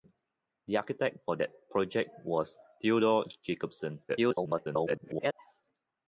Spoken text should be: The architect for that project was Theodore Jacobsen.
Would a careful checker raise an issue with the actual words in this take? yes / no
yes